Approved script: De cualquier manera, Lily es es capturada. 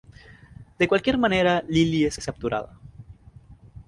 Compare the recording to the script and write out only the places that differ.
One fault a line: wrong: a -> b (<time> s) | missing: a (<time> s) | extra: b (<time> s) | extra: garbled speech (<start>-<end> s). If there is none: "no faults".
no faults